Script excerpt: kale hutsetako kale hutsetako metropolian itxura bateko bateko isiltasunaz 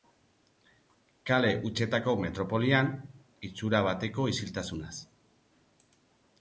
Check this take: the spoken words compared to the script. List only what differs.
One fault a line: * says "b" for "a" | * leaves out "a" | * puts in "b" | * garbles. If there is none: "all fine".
* leaves out "kale hutsetako"
* leaves out "bateko"